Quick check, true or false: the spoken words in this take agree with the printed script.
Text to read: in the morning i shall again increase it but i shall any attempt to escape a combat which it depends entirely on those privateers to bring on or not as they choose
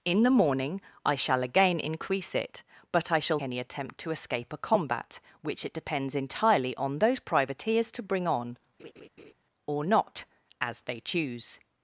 true